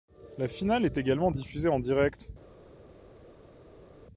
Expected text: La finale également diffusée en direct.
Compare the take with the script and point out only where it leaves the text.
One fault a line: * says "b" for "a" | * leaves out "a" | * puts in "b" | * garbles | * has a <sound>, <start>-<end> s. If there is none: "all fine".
* puts in "est"